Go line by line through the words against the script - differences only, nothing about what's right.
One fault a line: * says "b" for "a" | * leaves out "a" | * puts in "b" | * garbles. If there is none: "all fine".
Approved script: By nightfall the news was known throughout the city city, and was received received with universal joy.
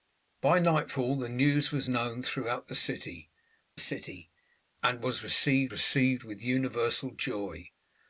all fine